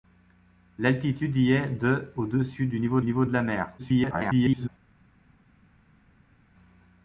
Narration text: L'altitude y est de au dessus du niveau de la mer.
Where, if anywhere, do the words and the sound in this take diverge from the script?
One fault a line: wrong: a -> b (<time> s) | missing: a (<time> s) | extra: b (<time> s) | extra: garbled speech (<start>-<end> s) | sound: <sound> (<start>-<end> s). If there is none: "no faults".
extra: niveau (3.0 s)
extra: garbled speech (3.8-4.7 s)